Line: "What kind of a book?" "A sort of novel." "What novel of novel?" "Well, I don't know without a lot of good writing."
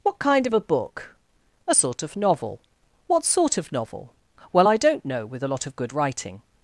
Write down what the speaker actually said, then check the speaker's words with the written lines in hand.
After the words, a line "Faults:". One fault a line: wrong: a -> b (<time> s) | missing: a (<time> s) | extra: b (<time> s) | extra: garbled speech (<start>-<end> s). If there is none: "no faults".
"What kind of a book?" "A sort of novel." "What sort of novel?" "Well, I don't know with a lot of good writing."
Faults:
wrong: novel -> sort (3.2 s)
wrong: without -> with (5.2 s)